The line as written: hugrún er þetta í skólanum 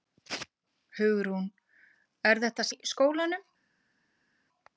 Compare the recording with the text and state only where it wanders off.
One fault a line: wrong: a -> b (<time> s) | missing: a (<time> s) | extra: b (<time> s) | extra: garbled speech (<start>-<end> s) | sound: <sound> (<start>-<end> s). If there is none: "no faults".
no faults